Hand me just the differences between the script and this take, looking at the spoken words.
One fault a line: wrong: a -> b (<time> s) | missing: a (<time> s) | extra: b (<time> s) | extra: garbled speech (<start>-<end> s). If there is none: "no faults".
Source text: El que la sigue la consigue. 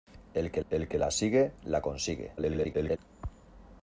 extra: el que (0.7 s)
extra: garbled speech (2.4-3.0 s)